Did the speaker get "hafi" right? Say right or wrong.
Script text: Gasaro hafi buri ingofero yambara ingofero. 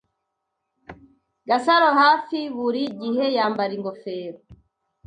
right